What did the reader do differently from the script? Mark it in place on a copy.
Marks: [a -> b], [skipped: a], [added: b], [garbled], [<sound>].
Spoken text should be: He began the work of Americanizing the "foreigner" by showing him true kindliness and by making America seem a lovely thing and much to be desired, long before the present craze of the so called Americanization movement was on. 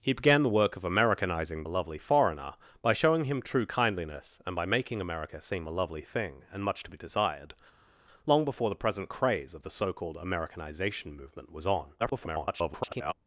He began the work of Americanizing [the -> lovely] "foreigner" by showing him true kindliness and by making America seem a lovely thing and much to be desired, long before the present craze of the so called Americanization movement was on. [garbled]